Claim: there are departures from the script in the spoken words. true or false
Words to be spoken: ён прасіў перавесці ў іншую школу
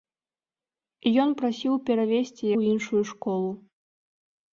false